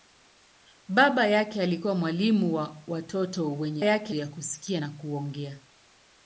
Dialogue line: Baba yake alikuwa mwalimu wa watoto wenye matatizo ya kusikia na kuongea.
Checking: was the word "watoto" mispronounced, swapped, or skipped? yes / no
no